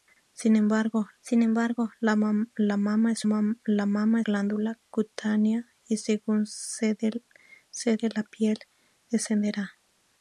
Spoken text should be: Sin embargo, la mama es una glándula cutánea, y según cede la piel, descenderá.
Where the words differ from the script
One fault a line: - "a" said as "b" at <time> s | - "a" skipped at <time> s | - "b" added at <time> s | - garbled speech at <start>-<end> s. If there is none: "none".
- "sin embargo" added at 1.2 s
- "una" said as "mama" at 3.3 s